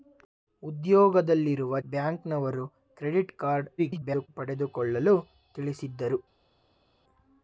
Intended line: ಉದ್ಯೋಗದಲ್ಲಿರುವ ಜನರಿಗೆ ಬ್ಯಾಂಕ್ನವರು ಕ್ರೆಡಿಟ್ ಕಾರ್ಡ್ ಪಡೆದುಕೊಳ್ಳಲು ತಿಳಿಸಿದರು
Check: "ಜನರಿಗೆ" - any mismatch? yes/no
yes